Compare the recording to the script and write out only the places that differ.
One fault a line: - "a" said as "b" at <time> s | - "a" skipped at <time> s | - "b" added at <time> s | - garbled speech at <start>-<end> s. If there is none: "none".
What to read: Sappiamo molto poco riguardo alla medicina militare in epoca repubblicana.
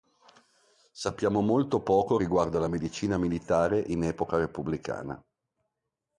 none